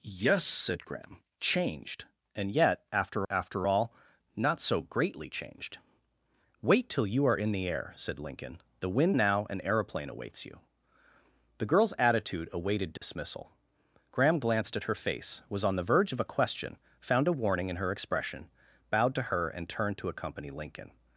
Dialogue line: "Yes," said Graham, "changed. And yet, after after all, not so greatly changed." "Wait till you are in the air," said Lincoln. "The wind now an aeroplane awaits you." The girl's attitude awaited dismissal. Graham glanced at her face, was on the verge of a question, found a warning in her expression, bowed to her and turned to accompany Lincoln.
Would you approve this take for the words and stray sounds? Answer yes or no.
no